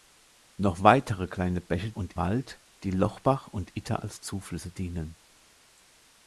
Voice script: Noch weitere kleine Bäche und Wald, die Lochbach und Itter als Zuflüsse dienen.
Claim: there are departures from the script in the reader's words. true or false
false